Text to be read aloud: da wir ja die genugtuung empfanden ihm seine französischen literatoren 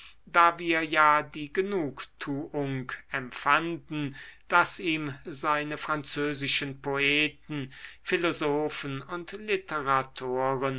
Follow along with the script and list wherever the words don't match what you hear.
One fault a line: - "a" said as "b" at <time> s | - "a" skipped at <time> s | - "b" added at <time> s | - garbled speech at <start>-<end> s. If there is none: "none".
- "daß" added at 4.5 s
- "poeten philosophen und" added at 6.8 s